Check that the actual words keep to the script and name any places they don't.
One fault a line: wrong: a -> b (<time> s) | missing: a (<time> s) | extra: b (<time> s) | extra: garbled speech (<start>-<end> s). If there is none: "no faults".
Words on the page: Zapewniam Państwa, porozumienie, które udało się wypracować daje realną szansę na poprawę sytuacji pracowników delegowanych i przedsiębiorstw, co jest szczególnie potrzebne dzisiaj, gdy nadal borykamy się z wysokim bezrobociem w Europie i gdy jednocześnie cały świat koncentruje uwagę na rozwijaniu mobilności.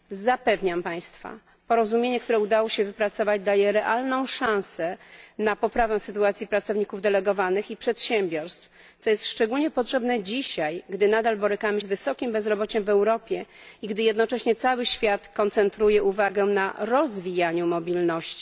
missing: się (11.8 s)